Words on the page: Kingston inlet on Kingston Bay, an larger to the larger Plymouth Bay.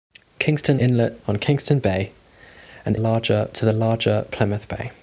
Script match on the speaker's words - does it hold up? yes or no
yes